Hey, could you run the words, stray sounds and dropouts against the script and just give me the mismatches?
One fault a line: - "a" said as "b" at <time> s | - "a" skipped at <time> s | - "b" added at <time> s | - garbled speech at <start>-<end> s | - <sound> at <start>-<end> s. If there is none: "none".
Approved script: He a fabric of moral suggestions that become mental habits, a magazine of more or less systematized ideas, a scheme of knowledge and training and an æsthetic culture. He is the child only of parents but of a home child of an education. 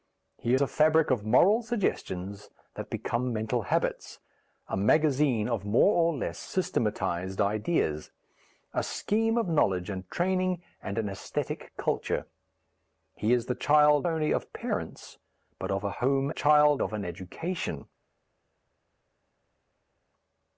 none